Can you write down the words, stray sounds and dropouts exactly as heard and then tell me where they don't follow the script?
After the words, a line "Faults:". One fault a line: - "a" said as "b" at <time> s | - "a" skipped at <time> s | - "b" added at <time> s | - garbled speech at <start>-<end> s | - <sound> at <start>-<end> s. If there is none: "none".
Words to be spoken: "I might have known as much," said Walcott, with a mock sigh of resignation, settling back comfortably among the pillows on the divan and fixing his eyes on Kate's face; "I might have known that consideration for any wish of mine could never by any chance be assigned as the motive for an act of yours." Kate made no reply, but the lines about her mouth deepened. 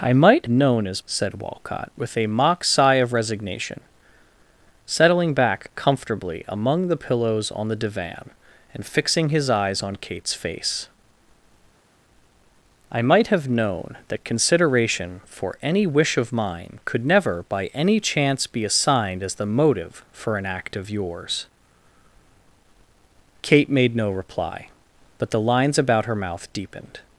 "I might known as," said Walcott, with a mock sigh of resignation, settling back comfortably among the pillows on the divan and fixing his eyes on Kate's face; "I might have known that consideration for any wish of mine could never by any chance be assigned as the motive for an act of yours." Kate made no reply, but the lines about her mouth deepened.
Faults:
- "have" skipped at 0.5 s
- "much" skipped at 1.0 s